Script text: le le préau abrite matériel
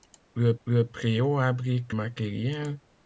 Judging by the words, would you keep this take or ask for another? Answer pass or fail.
pass